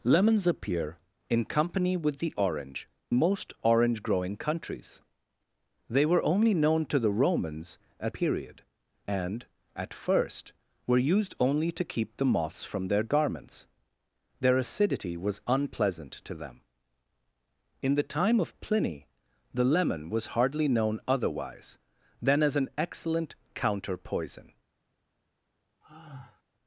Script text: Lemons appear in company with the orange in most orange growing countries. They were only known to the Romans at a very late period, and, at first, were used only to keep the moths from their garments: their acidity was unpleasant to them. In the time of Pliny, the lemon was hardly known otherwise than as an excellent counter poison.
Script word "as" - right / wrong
right